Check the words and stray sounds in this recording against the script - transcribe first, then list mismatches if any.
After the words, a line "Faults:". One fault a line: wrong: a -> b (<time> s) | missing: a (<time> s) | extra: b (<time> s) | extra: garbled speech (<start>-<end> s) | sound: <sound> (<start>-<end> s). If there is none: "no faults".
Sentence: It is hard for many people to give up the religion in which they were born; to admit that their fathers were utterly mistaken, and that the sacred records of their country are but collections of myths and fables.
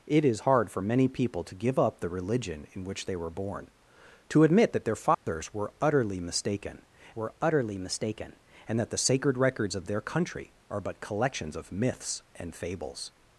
It is hard for many people to give up the religion in which they were born; to admit that their fathers were utterly mistaken were utterly mistaken, and that the sacred records of their country are but collections of myths and fables.
Faults:
sound: dropout (5.1-5.3 s)
extra: were utterly mistaken (7.1 s)